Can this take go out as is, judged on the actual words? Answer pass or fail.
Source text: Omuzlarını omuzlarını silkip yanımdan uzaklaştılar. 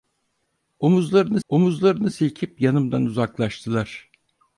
pass